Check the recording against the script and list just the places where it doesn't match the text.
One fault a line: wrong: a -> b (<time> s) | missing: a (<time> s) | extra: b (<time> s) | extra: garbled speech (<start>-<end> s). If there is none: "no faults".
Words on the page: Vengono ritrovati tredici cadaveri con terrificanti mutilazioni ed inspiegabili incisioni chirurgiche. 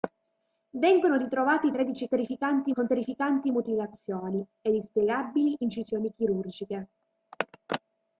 wrong: cadaveri -> terrificanti (2.1 s)